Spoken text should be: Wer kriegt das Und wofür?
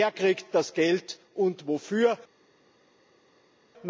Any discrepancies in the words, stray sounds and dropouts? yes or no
yes